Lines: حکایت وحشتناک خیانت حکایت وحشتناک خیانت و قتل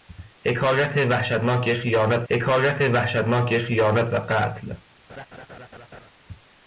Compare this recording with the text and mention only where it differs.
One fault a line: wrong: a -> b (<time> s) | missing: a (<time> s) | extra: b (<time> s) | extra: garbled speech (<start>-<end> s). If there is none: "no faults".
no faults